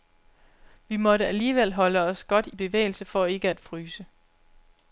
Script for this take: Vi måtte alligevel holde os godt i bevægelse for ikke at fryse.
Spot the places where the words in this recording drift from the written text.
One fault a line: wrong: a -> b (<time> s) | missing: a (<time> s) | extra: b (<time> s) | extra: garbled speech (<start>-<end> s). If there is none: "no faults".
no faults